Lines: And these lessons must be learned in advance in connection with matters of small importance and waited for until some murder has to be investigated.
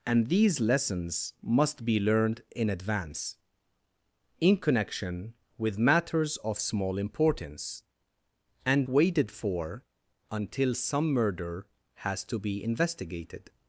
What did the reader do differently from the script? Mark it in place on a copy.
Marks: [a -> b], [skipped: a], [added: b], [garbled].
And these lessons must be learned in advance in connection with matters of small importance and waited for until some murder has to be investigated.